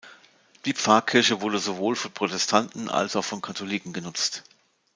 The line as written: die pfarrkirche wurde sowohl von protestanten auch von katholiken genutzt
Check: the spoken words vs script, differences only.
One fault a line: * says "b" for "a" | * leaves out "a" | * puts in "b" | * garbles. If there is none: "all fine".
* puts in "als"